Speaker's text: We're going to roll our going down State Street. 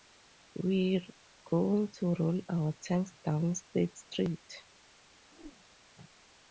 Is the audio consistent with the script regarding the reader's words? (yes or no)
no